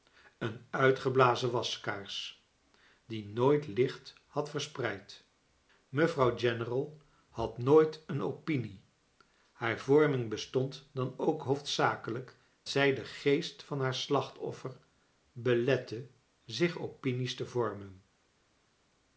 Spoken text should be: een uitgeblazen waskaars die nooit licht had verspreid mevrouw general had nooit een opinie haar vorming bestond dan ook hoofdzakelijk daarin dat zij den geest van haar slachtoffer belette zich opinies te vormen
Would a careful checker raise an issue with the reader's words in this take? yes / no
yes